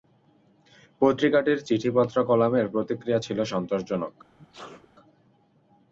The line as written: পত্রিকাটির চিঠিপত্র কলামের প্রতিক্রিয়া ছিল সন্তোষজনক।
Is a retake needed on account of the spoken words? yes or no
no